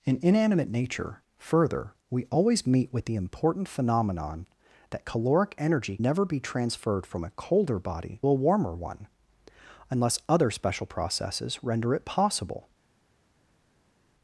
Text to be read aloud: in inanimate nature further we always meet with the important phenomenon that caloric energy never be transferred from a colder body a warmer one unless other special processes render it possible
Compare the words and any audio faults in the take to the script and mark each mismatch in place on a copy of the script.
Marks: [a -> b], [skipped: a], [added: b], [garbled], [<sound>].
in inanimate nature further we always meet with the important phenomenon that caloric energy never be transferred from a colder body a warmer one unless other special processes render it possible